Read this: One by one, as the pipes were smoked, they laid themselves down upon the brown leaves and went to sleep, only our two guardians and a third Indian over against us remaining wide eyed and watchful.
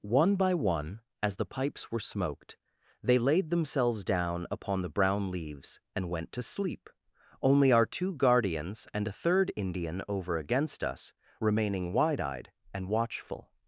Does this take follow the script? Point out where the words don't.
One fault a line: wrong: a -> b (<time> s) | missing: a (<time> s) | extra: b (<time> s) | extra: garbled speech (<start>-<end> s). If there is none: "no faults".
no faults